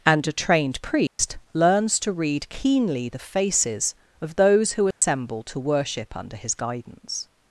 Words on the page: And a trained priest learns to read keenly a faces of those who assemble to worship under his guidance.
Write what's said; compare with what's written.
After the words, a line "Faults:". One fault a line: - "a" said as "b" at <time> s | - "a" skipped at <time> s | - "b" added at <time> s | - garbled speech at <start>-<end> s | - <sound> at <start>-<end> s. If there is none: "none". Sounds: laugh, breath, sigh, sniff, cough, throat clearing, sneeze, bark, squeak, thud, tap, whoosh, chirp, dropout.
And a trained priest learns to read keenly the faces of those who assemble to worship under his guidance.
Faults:
- dropout at 1.1-1.2 s
- "a" said as "the" at 3.1 s
- dropout at 4.9-5.0 s